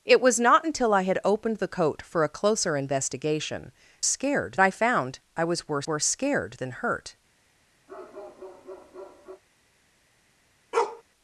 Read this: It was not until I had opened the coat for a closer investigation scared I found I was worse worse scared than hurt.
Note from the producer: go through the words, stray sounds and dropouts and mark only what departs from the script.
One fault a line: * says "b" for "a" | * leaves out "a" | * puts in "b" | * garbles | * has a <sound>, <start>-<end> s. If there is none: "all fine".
* has a bark, 7.9-9.4 s
* has a bark, 10.7-11.0 s